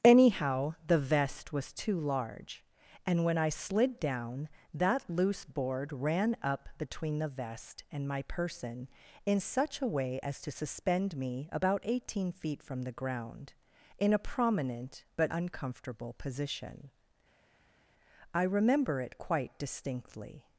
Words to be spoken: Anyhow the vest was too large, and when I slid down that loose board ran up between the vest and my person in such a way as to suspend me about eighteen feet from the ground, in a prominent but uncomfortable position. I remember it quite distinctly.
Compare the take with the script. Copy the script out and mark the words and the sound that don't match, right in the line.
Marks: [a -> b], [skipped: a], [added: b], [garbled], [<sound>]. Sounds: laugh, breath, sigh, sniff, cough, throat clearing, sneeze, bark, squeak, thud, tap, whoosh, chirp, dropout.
Anyhow the vest was too large, and when I slid down that loose board ran up between the vest and my person in such a way as to suspend me about eighteen feet from the ground, in a prominent but uncomfortable position. I remember it quite distinctly.